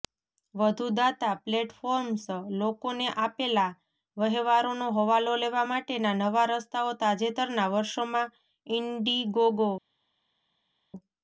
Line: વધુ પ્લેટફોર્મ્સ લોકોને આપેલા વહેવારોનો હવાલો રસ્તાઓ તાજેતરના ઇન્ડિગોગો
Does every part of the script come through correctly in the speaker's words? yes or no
no